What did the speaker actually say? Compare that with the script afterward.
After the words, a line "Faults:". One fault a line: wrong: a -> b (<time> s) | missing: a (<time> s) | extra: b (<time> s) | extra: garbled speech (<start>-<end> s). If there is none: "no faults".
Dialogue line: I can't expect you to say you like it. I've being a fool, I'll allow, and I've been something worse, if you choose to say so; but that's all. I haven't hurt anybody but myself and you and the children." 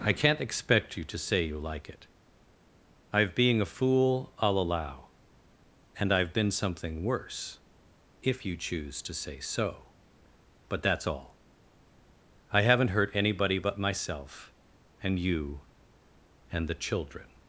I can't expect you to say you like it. I've being a fool, I'll allow, and I've been something worse, if you choose to say so; but that's all. I haven't hurt anybody but myself and you and the children."
Faults:
no faults